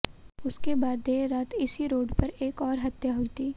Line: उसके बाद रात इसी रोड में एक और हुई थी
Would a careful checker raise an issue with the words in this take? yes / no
yes